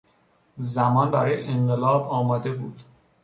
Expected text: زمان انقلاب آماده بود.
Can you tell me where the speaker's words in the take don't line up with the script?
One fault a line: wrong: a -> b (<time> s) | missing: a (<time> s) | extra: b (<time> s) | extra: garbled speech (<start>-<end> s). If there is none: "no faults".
extra: برای (1.1 s)